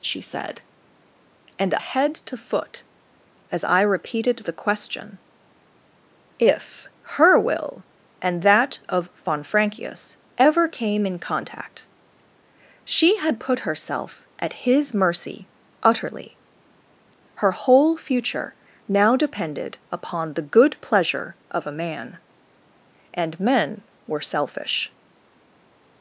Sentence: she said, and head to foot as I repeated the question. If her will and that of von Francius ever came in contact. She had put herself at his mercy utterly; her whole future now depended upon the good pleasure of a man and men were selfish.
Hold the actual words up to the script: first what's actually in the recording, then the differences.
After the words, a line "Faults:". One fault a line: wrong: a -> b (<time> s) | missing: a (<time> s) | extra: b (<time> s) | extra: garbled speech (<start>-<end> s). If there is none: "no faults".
she said, and head to foot as I repeated the question. If her will and that of von Francius ever came in contact. She had put herself at his mercy utterly; her whole future now depended upon the good pleasure of a man and men were selfish.
Faults:
no faults